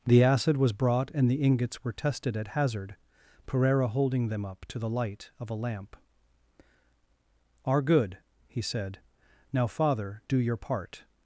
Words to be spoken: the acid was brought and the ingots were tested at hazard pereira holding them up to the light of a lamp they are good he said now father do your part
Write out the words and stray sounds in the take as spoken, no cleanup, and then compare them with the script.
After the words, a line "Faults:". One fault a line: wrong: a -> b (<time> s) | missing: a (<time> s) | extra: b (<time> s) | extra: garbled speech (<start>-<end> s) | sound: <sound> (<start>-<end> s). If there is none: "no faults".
the acid was brought and the ingots were tested at hazard pereira holding them up to the light of a lamp are good he said now father do your part
Faults:
missing: they (6.0 s)